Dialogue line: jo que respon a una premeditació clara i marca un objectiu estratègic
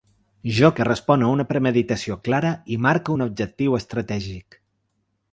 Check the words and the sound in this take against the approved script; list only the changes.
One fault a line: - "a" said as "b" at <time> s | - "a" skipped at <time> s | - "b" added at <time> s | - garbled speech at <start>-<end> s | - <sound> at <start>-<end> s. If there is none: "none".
none